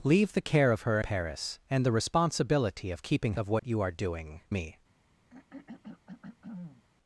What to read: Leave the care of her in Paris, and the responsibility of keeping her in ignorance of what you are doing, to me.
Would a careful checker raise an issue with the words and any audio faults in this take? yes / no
yes